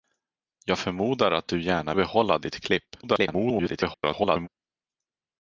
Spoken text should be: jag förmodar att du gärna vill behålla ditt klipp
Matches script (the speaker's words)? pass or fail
fail